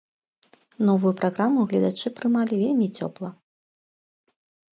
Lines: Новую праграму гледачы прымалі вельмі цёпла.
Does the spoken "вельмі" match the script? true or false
true